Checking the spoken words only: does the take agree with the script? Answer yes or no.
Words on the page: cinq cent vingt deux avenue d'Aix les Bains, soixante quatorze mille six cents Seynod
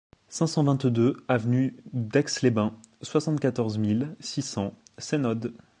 yes